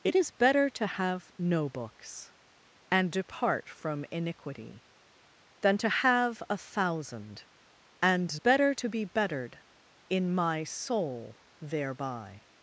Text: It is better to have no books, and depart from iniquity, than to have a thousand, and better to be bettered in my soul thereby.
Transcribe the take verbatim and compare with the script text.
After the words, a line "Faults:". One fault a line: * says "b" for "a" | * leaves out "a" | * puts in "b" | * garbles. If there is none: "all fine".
It is better to have no books, and depart from iniquity, than to have a thousand, and better to be bettered in my soul thereby.
Faults:
all fine